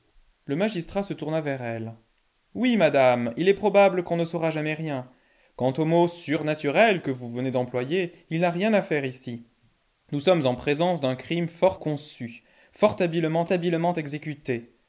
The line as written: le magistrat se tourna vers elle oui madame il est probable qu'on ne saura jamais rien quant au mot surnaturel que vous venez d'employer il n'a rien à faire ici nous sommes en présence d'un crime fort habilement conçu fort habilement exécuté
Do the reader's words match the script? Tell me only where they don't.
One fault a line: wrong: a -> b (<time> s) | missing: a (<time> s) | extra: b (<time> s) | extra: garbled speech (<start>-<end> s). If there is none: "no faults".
missing: habilement (11.8 s)
extra: habilement (13.5 s)